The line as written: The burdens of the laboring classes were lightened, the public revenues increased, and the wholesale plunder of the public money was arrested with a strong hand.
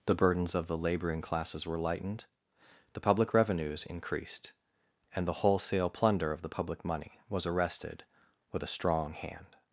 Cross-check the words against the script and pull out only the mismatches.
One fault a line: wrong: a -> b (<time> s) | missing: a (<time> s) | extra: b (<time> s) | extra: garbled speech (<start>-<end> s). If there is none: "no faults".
no faults